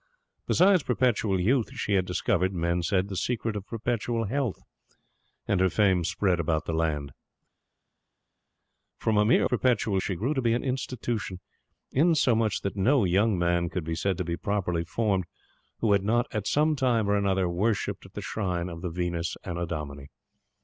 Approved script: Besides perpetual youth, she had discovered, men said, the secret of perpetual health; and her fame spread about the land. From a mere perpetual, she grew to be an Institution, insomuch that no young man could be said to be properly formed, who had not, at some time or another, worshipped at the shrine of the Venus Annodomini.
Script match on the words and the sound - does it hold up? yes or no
yes